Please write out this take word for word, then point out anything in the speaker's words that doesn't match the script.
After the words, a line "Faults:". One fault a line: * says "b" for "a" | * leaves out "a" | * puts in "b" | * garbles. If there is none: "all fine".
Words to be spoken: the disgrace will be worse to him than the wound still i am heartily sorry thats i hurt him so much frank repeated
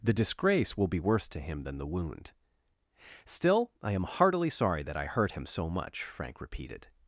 the disgrace will be worse to him than the wound still i am heartily sorry that i hurt him so much frank repeated
Faults:
* says "that" for "thats"